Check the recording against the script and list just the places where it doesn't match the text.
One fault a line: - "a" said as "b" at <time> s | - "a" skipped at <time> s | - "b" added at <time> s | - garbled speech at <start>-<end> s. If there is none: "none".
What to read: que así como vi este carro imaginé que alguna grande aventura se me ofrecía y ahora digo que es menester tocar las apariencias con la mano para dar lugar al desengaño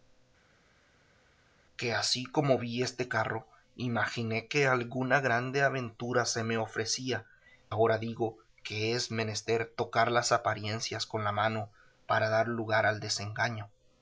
- "y" skipped at 7.3 s